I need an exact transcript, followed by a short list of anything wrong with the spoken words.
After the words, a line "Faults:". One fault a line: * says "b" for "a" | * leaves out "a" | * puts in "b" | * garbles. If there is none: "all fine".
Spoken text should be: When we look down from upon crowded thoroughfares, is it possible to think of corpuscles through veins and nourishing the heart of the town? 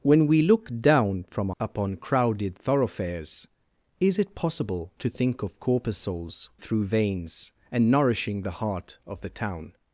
When we look down from upon crowded thoroughfares, is it possible to think of corpuscles through veins and nourishing the heart of the town?
Faults:
all fine